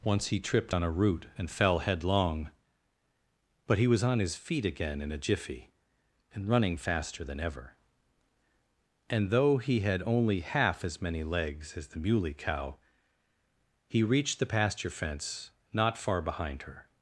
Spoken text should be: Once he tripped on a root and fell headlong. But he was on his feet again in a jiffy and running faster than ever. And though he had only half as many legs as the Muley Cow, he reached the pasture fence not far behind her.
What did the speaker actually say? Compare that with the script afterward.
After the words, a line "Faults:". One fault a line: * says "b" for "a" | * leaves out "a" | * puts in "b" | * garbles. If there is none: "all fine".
Once he tripped on a root and fell headlong. But he was on his feet again in a jiffy and running faster than ever. And though he had only half as many legs as the Muley Cow, he reached the pasture fence not far behind her.
Faults:
all fine